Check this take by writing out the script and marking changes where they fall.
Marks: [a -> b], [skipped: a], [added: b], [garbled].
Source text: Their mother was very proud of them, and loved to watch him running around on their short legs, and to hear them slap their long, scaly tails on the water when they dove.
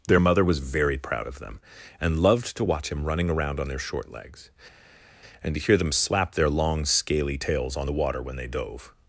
Their mother was very proud of them, and loved to watch him running around on their short legs, and to hear them slap their long, scaly tails on the water when they dove.